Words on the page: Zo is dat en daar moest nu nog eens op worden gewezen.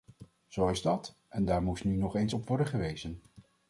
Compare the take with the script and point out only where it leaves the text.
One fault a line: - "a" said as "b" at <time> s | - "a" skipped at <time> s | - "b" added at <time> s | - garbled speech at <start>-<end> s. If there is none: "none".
none